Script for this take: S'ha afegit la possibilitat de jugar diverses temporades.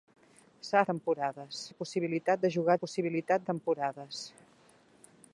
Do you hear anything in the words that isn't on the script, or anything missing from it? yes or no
yes